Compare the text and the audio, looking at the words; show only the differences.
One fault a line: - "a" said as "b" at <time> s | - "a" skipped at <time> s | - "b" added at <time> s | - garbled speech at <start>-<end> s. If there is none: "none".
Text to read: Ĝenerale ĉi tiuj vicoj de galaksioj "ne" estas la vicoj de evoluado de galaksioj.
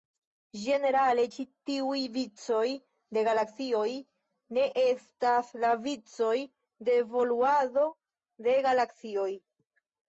none